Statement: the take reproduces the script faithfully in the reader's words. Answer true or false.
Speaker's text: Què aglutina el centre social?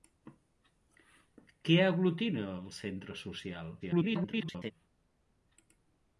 false